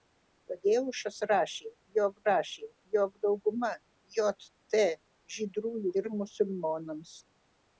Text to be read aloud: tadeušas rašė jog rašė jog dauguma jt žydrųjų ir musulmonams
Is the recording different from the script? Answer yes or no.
no